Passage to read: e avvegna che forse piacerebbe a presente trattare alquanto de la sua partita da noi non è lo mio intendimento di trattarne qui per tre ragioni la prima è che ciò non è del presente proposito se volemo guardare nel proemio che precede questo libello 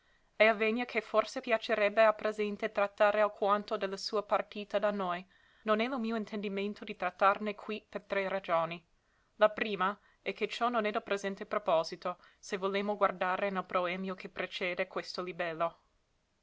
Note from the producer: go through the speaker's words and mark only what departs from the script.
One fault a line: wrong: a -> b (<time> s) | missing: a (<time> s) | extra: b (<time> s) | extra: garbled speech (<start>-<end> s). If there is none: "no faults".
no faults